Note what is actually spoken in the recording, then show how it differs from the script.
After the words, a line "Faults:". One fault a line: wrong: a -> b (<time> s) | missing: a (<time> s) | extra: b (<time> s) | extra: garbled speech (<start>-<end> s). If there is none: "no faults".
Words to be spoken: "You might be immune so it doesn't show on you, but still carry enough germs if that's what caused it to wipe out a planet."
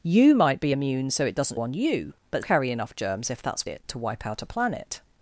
"You might be immune so it doesn't on you, but carry enough germs if that's it to wipe out a planet."
Faults:
missing: show (1.6 s)
missing: still (2.5 s)
missing: what caused (3.7 s)